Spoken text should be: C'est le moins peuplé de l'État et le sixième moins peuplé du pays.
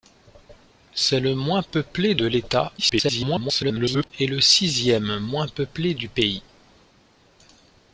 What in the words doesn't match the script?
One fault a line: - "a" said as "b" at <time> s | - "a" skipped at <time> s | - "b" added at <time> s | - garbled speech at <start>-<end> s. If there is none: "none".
- garbled speech at 2.8-4.1 s